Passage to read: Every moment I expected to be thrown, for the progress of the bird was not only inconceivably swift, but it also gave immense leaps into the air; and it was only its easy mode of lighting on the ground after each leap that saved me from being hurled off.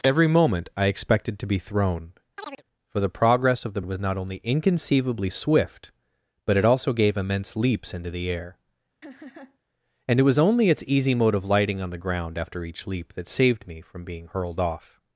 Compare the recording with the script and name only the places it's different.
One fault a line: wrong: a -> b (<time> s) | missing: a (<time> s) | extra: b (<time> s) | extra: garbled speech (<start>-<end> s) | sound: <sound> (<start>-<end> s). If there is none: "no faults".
sound: chirp (2.4-2.6 s)
missing: bird (3.8 s)
sound: laugh (9.0-9.6 s)